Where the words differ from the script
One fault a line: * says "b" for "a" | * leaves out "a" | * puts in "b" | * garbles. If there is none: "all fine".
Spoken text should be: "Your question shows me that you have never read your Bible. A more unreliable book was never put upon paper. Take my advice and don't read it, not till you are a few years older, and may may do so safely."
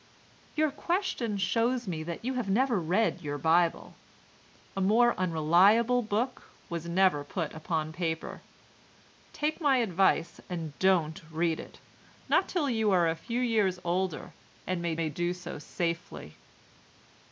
all fine